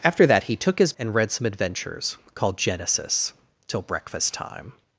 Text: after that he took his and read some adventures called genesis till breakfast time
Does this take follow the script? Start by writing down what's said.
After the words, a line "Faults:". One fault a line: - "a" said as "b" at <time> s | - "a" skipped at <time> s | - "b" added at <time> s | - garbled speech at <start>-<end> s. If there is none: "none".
after that he took his and read some adventures called genesis till breakfast time
Faults:
none